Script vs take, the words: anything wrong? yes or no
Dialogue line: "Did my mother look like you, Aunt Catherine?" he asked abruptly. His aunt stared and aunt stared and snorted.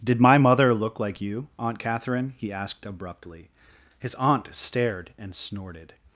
yes